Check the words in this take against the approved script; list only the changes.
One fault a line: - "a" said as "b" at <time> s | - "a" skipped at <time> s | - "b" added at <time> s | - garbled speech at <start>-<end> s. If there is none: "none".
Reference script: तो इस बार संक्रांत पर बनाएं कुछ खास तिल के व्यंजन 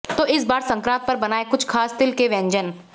none